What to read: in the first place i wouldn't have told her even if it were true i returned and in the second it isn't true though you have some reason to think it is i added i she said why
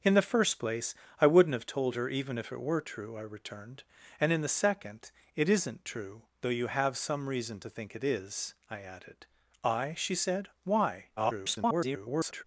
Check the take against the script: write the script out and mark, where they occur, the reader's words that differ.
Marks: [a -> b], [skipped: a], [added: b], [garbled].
in the first place i wouldn't have told her even if it were true i returned and in the second it isn't true though you have some reason to think it is i added i she said why [garbled]